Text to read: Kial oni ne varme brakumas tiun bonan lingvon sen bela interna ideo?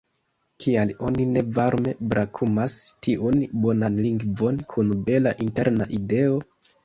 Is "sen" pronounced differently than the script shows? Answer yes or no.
yes